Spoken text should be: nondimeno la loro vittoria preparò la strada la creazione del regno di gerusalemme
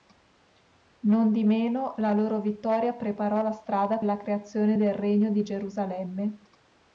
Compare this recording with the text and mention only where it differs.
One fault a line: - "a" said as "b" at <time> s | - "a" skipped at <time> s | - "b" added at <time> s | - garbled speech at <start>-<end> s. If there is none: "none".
none